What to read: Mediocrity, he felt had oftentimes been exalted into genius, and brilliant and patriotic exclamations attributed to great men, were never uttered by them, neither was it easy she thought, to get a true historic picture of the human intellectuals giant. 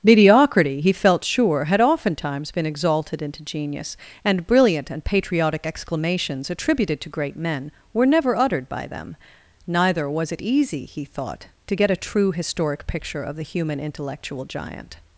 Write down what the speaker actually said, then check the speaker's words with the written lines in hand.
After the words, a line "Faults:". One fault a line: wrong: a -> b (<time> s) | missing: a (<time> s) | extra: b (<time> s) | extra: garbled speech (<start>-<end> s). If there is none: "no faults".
Mediocrity, he felt sure, had oftentimes been exalted into genius, and brilliant and patriotic exclamations attributed to great men, were never uttered by them, neither was it easy he thought, to get a true historic picture of the human intellectual giant.
Faults:
extra: sure (1.2 s)
wrong: she -> he (10.8 s)
wrong: intellectuals -> intellectual (13.8 s)